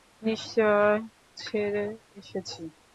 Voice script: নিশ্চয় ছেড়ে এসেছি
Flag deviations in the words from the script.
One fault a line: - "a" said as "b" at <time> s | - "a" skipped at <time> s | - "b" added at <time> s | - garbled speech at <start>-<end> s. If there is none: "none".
none